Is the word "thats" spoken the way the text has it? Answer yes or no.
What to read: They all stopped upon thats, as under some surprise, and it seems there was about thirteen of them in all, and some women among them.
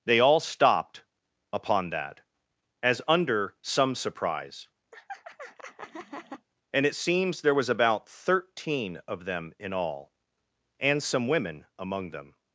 no